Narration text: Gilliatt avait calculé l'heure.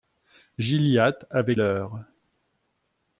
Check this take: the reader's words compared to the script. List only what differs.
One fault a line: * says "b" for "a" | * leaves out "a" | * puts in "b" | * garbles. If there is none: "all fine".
* leaves out "calculé"